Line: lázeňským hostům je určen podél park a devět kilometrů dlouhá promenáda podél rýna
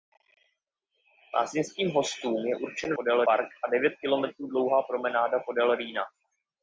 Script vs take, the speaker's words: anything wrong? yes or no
no